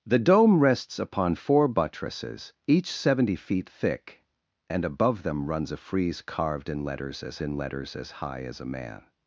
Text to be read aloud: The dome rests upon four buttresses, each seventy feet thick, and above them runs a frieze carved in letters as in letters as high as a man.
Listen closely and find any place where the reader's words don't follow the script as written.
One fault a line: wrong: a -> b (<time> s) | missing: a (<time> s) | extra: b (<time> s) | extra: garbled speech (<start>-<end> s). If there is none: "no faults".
no faults